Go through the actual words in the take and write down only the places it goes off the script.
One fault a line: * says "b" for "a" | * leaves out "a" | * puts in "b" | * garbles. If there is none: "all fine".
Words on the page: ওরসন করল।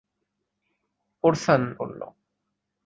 all fine